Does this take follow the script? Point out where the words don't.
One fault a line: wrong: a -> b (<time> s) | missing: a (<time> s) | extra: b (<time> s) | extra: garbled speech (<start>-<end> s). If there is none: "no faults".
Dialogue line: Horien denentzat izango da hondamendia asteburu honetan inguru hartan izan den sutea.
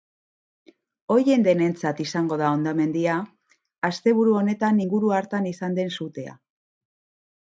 no faults